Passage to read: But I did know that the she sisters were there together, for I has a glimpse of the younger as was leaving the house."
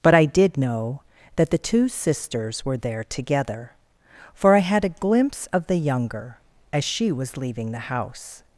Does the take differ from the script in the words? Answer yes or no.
yes